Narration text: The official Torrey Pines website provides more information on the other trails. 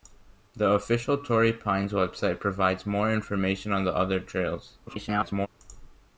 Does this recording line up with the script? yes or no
no